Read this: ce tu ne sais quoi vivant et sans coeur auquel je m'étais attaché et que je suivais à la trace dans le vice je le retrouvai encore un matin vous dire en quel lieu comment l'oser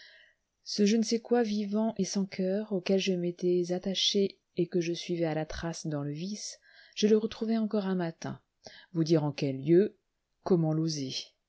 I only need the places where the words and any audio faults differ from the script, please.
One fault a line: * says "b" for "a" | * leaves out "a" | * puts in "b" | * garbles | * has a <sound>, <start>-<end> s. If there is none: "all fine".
* says "je" for "tu"